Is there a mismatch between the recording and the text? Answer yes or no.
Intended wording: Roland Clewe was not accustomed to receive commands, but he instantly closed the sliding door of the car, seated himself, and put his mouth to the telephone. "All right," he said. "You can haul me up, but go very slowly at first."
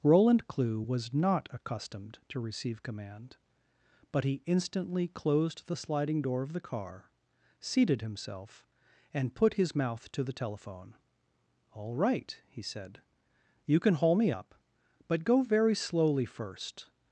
yes